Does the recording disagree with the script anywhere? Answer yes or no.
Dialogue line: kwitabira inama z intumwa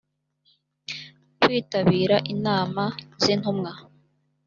no